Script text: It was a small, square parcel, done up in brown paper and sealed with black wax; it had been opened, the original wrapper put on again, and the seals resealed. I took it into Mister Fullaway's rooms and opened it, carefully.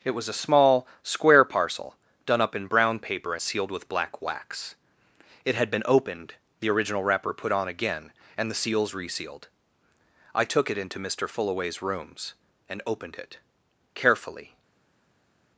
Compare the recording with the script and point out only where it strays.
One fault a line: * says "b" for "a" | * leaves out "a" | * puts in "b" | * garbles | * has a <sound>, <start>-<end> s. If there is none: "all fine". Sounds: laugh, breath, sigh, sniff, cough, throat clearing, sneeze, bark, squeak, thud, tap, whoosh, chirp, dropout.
* leaves out "and"